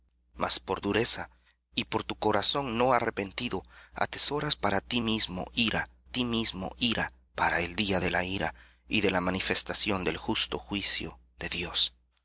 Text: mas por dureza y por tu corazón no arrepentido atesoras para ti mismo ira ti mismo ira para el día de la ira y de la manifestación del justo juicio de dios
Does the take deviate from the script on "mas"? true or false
false